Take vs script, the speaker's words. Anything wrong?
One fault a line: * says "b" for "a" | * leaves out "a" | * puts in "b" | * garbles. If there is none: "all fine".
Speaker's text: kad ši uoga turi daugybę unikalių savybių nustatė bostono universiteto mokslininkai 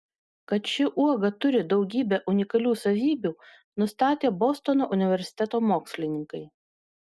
all fine